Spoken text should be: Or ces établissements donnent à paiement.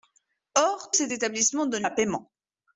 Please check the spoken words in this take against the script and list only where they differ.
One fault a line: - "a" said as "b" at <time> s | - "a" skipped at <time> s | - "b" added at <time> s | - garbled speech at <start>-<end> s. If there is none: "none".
none